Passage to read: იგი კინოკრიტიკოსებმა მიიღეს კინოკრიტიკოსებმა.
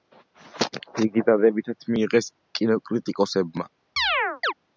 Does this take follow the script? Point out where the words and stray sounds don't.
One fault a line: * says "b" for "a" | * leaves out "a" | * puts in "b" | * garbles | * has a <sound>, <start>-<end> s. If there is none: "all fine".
* says "დადებითად" for "კინოკრიტიკოსებმა"
* has a chirp, 4.0-4.5 s